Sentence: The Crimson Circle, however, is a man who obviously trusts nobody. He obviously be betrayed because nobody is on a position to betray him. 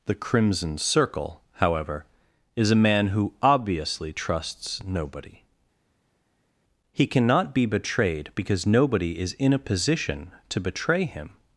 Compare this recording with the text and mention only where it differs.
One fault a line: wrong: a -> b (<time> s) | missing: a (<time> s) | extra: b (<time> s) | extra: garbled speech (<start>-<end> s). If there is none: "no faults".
wrong: obviously -> cannot (7.1 s)
wrong: on -> in (9.3 s)